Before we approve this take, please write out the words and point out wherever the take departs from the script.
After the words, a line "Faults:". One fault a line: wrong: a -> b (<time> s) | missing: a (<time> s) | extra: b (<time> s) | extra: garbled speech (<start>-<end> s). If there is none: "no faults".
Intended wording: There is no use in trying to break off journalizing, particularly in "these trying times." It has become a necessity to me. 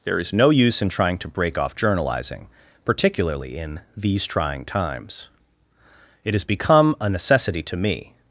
There is no use in trying to break off journalizing, particularly in "these trying times." It has become a necessity to me.
Faults:
no faults